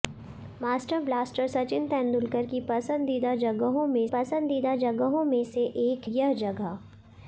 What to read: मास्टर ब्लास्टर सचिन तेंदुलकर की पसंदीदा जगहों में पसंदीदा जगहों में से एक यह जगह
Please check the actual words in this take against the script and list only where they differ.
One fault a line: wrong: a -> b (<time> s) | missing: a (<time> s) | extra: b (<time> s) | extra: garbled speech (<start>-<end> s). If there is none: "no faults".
no faults